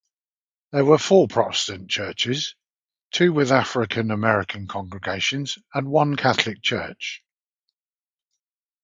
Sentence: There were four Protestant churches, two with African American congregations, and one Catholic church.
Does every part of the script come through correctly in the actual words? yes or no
yes